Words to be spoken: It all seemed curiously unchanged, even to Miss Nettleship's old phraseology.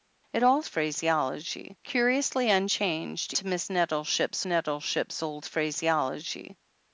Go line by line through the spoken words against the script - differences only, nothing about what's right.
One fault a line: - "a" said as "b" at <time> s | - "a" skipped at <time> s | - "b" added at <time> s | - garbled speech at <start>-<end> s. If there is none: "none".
- "seemed" said as "phraseology" at 0.6 s
- "even" skipped at 3.3 s
- "Nettleship's" added at 4.4 s